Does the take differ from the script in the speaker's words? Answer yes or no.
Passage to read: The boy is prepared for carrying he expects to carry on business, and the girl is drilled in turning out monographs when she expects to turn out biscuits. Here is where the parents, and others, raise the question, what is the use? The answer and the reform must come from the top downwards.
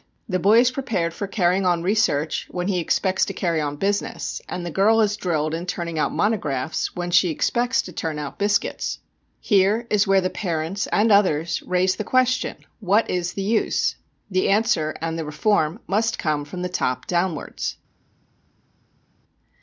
yes